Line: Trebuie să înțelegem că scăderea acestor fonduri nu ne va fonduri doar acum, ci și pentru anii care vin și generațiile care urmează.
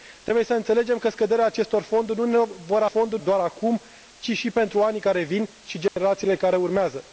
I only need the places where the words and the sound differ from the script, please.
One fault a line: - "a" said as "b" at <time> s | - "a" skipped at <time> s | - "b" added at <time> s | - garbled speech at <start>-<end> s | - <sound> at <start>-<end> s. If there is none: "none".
- dropout at 5.9-6.0 s